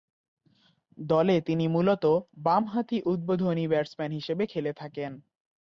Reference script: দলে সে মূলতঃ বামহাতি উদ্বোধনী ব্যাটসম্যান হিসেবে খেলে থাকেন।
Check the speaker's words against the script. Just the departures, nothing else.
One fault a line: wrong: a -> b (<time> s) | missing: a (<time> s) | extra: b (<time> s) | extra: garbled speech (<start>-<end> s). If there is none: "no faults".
wrong: সে -> তিনি (1.4 s)